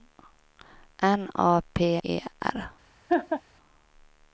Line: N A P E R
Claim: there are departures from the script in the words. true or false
false